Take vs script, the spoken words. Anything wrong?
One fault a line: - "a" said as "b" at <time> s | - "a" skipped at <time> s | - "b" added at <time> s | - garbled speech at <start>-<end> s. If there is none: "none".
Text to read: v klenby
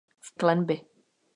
none